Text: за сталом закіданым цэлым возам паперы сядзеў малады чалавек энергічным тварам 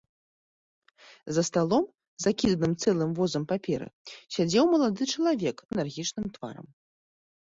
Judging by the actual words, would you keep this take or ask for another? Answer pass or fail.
pass